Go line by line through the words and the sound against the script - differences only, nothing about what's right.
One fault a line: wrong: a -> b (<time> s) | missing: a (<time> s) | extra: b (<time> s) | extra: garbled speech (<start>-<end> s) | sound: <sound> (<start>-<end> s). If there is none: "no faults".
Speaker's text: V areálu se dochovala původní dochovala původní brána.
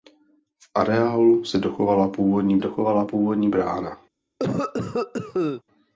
sound: cough (4.4-5.6 s)